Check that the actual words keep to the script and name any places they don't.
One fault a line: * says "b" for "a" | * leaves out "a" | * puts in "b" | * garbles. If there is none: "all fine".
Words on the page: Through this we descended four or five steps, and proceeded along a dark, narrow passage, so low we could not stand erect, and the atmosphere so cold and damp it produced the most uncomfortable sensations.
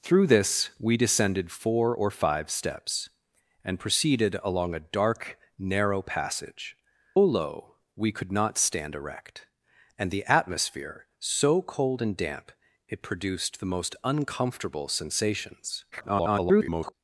* leaves out "so"
* garbles